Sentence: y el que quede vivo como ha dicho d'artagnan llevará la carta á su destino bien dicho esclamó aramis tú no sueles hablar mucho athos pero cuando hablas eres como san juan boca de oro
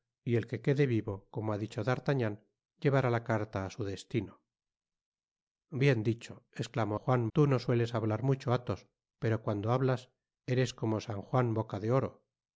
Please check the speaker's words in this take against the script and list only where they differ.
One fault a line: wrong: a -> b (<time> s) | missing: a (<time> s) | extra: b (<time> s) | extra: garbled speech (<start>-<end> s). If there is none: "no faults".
wrong: aramis -> juan (6.9 s)